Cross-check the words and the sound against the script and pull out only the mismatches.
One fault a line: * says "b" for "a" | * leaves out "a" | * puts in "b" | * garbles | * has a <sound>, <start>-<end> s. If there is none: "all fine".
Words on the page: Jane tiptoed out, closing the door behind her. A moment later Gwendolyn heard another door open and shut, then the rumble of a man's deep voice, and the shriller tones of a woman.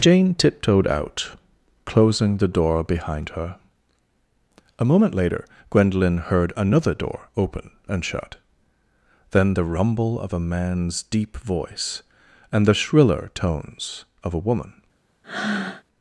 * has a breath, 15.2-15.8 s